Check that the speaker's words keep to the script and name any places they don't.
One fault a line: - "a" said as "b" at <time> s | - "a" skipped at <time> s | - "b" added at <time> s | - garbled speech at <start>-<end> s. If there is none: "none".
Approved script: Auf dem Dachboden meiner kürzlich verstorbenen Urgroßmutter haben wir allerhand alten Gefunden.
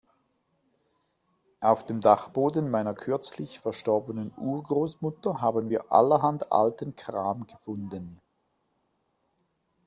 - "Kram" added at 7.0 s